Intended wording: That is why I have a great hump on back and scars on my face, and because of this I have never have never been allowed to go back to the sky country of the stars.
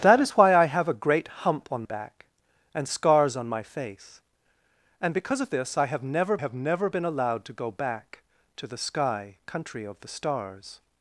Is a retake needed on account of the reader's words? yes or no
no